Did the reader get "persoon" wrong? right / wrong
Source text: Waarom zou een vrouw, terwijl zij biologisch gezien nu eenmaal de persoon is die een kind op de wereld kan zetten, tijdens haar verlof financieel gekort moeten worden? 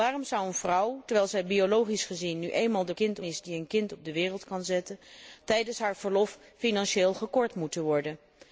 wrong